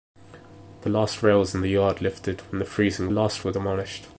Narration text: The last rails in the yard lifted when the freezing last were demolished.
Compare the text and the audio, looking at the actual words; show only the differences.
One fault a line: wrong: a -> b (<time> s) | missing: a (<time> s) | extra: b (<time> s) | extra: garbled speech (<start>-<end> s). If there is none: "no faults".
no faults